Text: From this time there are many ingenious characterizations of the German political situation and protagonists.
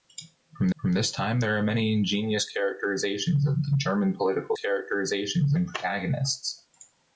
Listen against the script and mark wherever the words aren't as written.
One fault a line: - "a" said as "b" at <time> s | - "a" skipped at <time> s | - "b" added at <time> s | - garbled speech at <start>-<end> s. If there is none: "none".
- "from" added at 0.8 s
- "situation" said as "characterizations" at 4.6 s